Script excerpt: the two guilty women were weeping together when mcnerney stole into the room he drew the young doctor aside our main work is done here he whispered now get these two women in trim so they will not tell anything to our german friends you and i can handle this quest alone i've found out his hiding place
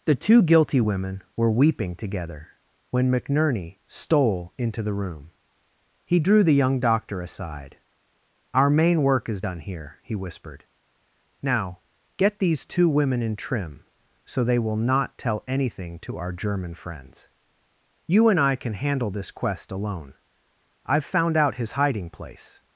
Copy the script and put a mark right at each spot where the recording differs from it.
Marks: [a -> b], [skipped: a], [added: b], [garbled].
the two guilty women were weeping together when mcnerney stole into the room he drew the young doctor aside our main work is done here he whispered now get these two women in trim so they will not tell anything to our german friends you and i can handle this quest alone i've found out his hiding place